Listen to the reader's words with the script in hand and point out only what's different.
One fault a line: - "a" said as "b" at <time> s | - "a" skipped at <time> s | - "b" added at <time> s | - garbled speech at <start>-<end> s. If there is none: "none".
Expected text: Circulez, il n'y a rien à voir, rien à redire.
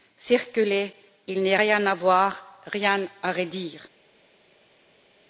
none